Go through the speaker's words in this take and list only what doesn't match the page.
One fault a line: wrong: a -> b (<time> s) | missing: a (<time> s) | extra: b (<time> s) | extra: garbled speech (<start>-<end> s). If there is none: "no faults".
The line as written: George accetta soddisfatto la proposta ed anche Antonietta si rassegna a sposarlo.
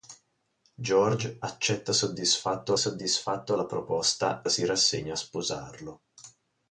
extra: soddisfatto (2.8 s)
missing: ed anche Antonietta (4.4 s)